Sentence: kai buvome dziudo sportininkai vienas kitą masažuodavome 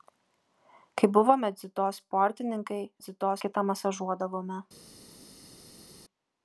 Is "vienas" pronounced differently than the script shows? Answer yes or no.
yes